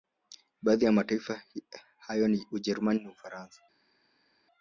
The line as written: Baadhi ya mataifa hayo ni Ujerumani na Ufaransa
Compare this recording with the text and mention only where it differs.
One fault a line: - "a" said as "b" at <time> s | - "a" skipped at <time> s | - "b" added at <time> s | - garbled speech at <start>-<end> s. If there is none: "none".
none